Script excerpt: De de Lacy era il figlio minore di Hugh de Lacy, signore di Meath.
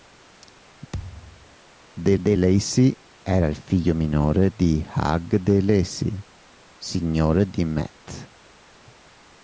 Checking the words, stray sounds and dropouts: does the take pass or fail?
fail